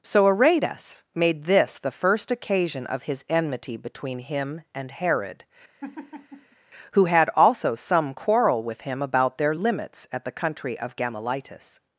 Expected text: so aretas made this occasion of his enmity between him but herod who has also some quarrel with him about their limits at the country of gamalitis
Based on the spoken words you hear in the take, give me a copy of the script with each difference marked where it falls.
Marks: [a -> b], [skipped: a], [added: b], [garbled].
so aretas made this [added: the first] occasion of his enmity between him [but -> and] herod who [has -> had] also some quarrel with him about their limits at the country of gamalitis